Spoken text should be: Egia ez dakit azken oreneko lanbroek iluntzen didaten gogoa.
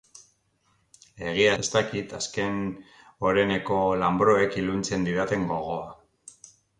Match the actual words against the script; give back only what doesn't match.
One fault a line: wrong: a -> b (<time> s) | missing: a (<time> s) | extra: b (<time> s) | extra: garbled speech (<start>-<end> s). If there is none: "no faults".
no faults